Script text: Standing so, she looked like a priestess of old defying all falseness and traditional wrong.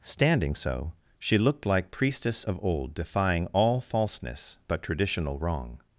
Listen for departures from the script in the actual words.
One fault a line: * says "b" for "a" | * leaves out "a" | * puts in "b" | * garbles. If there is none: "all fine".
* leaves out "a"
* says "but" for "and"